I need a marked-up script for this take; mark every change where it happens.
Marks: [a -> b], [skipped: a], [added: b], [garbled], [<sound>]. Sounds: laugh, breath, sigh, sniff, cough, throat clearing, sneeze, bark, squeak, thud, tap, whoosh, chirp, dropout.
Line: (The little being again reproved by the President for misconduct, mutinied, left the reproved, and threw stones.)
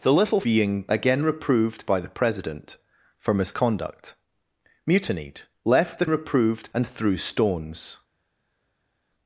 (The little being again reproved by the President for misconduct, mutinied, left the reproved, and threw stones.)